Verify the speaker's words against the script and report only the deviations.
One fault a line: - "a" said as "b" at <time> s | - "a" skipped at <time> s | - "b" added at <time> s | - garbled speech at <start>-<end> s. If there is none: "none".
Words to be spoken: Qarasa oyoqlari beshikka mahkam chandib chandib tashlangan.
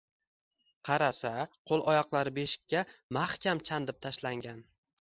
- "qo‘l" added at 1.7 s
- "chandib" skipped at 4.0 s